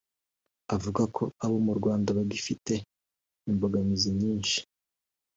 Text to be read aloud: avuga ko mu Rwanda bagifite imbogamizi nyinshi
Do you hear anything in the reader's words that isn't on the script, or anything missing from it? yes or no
yes